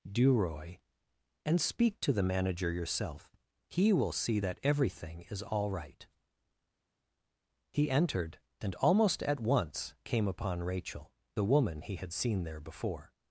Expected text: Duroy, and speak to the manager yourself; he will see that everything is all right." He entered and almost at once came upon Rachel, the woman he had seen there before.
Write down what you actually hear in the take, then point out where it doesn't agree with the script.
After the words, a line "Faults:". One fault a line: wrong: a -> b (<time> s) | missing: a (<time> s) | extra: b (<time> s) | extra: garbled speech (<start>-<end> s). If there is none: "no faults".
Duroy, and speak to the manager yourself; he will see that everything is all right." He entered and almost at once came upon Rachel, the woman he had seen there before.
Faults:
no faults